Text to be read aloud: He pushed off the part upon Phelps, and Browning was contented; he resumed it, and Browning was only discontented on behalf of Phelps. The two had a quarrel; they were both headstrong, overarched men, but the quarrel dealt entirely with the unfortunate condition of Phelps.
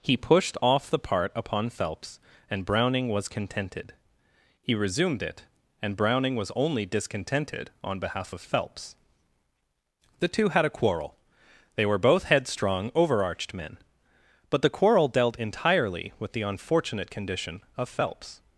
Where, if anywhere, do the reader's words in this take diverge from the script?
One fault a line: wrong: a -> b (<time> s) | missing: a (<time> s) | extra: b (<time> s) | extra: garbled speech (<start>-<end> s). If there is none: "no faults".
no faults